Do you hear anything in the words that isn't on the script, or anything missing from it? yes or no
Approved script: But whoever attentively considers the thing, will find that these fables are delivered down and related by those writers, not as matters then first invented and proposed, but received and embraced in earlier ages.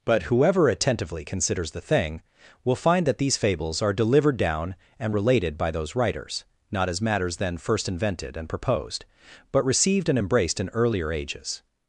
no